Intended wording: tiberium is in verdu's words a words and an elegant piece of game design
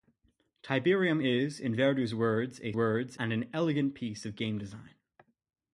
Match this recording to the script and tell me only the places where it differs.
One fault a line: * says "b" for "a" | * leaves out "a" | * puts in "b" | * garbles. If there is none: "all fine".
all fine